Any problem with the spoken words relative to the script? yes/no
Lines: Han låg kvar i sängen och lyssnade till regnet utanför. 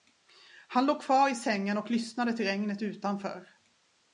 no